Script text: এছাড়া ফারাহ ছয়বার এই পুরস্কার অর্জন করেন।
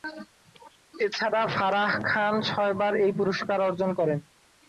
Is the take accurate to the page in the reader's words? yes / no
no